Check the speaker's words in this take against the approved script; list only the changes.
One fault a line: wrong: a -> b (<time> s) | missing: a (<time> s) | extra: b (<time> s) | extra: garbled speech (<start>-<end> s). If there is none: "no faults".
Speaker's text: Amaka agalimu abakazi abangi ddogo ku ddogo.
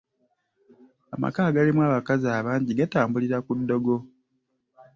wrong: ddogo -> gatambulira (2.8 s)